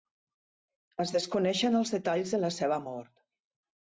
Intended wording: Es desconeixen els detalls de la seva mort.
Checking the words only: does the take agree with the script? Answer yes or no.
yes